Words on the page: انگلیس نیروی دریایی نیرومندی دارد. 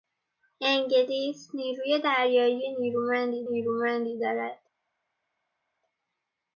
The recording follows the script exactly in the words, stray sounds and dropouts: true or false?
false